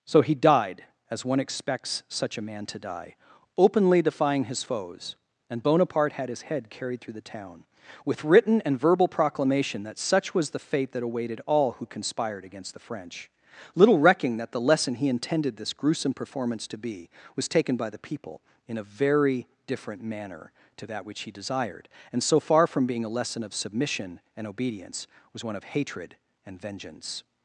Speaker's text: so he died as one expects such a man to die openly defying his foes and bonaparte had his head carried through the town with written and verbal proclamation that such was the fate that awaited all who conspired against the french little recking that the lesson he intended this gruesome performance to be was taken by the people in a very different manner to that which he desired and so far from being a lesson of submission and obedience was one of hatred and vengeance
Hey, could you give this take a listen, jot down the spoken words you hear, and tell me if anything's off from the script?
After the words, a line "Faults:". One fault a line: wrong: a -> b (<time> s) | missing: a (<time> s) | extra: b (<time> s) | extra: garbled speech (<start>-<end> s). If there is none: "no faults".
so he died as one expects such a man to die openly defying his foes and bonaparte had his head carried through the town with written and verbal proclamation that such was the fate that awaited all who conspired against the french little recking that the lesson he intended this gruesome performance to be was taken by the people in a very different manner to that which he desired and so far from being a lesson of submission and obedience was one of hatred and vengeance
Faults:
no faults